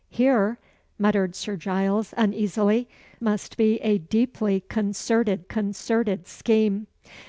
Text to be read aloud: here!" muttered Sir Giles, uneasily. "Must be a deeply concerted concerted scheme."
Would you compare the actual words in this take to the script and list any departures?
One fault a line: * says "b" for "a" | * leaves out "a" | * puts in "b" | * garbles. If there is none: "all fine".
all fine